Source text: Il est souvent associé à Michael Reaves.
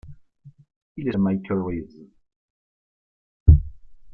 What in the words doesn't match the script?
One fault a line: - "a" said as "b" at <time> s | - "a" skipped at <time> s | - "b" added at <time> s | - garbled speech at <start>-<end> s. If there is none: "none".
- "souvent associé" skipped at 1.1 s